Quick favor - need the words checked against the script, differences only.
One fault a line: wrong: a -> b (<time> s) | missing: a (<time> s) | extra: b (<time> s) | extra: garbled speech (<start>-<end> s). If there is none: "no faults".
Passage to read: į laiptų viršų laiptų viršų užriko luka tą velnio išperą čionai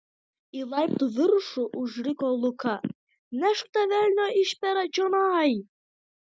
missing: laiptų viršų (1.6 s)
extra: nešk (3.5 s)